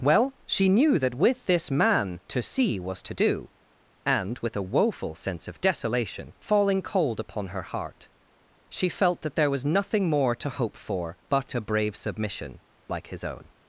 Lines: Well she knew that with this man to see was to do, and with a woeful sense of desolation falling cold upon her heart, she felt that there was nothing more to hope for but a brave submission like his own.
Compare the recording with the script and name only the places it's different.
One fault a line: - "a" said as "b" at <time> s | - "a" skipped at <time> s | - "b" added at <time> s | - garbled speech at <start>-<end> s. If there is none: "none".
none